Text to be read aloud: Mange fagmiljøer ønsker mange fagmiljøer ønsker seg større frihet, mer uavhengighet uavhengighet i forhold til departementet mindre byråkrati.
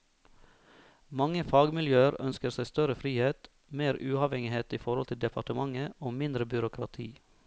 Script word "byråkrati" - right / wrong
right